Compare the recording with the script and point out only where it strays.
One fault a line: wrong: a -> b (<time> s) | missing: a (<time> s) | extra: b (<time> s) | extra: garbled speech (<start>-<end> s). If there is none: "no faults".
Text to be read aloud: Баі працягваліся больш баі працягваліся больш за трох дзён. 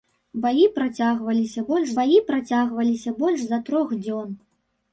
no faults